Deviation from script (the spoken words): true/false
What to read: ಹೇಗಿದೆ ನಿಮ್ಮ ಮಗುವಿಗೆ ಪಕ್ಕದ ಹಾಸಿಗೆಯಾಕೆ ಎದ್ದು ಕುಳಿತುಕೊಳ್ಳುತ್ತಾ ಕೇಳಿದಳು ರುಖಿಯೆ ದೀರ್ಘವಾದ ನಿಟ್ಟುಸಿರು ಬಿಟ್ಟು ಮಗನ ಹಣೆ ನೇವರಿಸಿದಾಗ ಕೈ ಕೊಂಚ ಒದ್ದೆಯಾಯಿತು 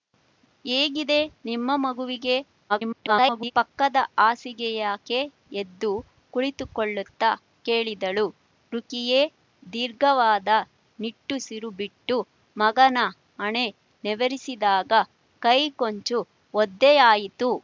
true